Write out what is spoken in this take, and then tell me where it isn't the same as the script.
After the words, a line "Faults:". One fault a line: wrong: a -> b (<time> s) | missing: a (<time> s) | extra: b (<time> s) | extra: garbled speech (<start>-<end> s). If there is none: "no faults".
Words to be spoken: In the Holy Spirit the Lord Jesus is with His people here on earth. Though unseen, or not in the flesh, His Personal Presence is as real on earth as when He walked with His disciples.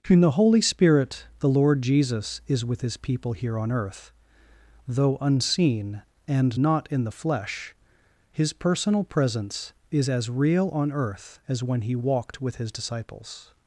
In the Holy Spirit the Lord Jesus is with His people here on earth. Though unseen, and not in the flesh, His Personal Presence is as real on earth as when He walked with His disciples.
Faults:
wrong: or -> and (6.3 s)